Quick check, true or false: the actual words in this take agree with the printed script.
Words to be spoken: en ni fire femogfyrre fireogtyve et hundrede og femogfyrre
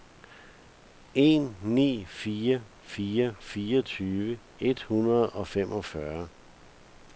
false